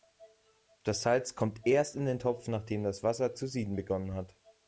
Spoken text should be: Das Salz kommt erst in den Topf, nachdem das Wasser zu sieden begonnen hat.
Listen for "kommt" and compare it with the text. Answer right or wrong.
right